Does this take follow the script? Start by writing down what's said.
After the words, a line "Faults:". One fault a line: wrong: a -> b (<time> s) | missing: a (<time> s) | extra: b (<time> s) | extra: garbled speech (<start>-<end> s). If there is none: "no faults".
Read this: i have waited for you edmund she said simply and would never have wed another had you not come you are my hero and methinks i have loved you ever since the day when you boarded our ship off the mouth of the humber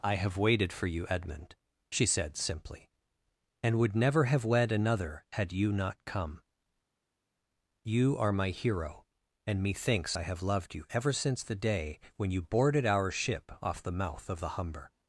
i have waited for you edmund she said simply and would never have wed another had you not come you are my hero and methinks i have loved you ever since the day when you boarded our ship off the mouth of the humber
Faults:
no faults